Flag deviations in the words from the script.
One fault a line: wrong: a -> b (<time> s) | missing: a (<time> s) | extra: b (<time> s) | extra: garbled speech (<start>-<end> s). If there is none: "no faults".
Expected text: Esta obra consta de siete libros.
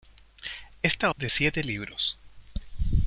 missing: obra consta (1.1 s)